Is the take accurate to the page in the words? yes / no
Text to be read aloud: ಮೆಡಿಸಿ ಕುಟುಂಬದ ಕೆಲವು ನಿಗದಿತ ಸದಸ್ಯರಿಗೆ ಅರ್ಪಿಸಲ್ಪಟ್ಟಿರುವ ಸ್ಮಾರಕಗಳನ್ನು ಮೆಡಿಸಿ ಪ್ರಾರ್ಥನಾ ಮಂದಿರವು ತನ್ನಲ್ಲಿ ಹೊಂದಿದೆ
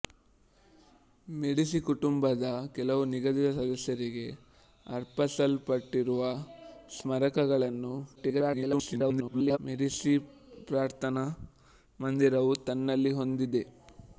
no